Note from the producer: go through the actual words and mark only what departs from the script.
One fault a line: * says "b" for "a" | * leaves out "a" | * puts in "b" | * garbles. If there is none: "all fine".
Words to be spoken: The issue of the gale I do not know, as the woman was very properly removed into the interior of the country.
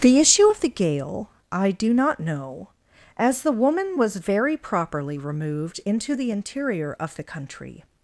all fine